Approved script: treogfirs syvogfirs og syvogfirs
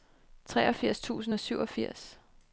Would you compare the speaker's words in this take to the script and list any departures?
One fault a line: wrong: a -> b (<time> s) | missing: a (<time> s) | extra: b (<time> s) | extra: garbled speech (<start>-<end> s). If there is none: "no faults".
wrong: syvogfirs -> tusind (1.0 s)